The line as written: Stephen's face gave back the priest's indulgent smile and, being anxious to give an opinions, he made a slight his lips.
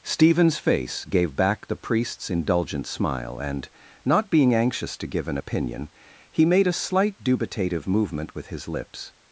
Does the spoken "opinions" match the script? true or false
false